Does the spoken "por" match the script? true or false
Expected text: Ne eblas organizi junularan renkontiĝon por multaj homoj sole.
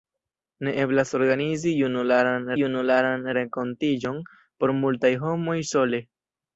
true